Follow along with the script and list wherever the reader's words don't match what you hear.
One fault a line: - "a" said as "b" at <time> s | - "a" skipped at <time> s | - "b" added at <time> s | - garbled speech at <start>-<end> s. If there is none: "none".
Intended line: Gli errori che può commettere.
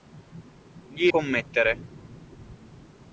- "errori che può" skipped at 1.1 s